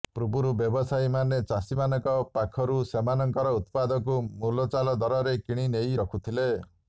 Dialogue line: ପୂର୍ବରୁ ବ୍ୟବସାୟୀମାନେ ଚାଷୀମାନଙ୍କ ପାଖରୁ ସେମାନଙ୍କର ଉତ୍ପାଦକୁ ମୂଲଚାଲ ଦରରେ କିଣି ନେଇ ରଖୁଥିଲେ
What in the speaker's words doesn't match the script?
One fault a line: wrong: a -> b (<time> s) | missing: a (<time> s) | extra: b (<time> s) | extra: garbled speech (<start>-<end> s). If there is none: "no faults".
no faults